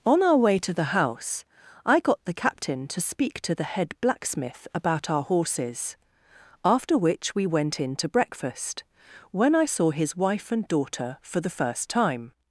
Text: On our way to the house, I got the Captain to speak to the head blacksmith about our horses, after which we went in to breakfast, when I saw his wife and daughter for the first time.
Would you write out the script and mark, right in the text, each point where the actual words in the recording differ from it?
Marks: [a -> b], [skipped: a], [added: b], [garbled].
On our way to the house, I got the Captain to speak to the head blacksmith about our horses, after which we went in to breakfast, when I saw his wife and daughter for the first time.